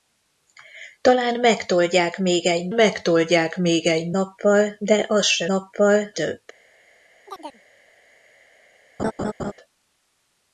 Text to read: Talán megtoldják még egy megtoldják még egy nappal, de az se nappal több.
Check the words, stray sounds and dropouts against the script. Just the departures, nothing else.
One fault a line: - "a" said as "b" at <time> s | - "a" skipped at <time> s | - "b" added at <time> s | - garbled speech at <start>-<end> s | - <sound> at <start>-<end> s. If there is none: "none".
- chirp at 7.3-7.6 s
- laugh at 9.0-9.5 s